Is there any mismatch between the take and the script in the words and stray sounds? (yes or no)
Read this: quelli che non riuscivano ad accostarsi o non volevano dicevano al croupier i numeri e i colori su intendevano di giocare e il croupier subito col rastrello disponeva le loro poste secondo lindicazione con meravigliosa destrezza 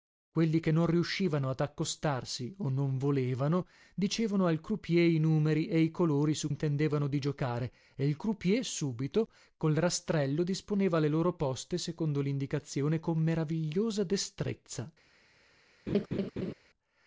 yes